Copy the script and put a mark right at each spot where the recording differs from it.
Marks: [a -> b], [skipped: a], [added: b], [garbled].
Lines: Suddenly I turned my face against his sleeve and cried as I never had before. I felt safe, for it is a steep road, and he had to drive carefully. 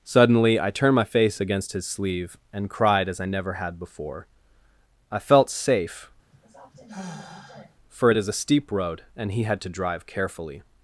Suddenly I turned my face against his sleeve and cried as I never had before. I felt safe, for it is a steep road, and he had to drive carefully.